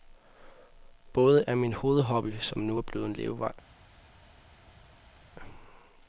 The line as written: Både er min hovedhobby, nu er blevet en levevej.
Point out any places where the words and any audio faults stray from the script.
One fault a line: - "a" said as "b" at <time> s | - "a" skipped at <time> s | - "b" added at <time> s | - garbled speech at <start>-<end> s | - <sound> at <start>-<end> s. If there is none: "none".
- "som" added at 2.4 s